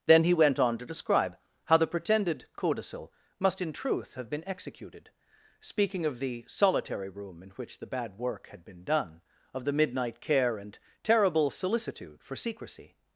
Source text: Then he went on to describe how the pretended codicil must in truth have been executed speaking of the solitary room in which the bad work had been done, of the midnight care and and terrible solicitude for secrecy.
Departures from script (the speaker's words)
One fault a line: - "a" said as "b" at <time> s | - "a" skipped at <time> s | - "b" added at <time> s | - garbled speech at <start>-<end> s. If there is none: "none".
- "and" skipped at 10.8 s